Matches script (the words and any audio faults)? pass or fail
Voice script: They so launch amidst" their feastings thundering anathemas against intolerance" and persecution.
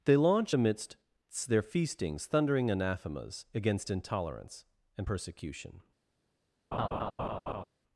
fail